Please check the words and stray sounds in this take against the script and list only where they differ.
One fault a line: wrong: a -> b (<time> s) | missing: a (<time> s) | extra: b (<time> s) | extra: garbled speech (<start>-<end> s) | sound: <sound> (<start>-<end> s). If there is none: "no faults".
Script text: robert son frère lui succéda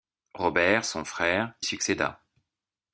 missing: lui (1.5 s)